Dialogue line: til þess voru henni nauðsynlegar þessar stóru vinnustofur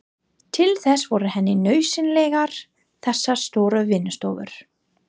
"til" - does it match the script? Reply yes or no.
yes